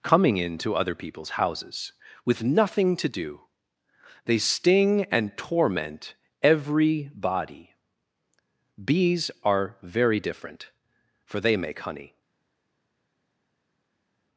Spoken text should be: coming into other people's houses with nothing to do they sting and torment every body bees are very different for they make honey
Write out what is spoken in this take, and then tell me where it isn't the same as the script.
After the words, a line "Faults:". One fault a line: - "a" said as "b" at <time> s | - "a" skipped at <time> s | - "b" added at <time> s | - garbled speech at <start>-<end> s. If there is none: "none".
coming into other people's houses with nothing to do they sting and torment every body bees are very different for they make honey
Faults:
none